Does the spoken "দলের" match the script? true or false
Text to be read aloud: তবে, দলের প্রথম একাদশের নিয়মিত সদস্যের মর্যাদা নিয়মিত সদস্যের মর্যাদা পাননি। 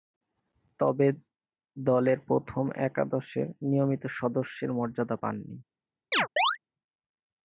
true